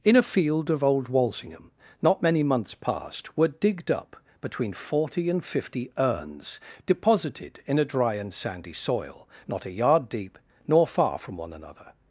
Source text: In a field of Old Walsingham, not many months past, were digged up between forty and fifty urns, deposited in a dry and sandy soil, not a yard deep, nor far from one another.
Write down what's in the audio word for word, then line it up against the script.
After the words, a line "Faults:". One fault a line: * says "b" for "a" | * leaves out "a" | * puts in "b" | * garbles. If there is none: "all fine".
In a field of Old Walsingham, not many months past, were digged up between forty and fifty urns, deposited in a dry and sandy soil, not a yard deep, nor far from one another.
Faults:
all fine